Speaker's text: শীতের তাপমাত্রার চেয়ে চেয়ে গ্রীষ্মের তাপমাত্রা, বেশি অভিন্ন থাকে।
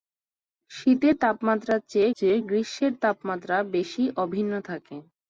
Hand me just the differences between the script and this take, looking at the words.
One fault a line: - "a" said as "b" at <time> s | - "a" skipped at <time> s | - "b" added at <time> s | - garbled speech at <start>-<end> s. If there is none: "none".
none